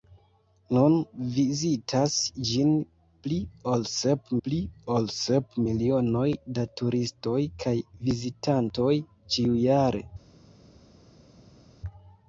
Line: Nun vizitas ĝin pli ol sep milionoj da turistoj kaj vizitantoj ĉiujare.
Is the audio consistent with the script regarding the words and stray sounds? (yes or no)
no